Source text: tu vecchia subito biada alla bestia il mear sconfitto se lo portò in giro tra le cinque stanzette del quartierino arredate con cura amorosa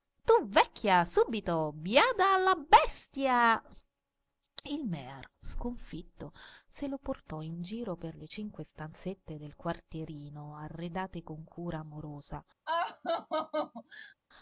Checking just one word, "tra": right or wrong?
wrong